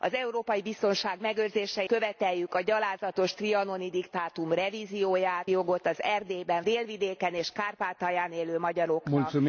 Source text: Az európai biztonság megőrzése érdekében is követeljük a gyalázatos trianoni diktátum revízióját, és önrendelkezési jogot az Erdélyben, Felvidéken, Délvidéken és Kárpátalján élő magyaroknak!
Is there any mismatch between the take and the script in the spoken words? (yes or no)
yes